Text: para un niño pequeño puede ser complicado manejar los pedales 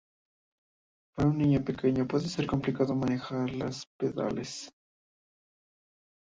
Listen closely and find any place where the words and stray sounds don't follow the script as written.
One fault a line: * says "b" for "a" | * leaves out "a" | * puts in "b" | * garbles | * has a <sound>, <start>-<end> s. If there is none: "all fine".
all fine